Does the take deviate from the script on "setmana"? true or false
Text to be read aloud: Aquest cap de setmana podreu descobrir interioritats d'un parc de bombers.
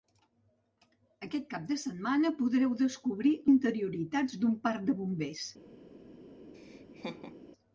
false